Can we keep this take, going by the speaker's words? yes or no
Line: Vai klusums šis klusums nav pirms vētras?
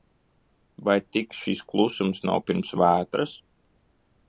no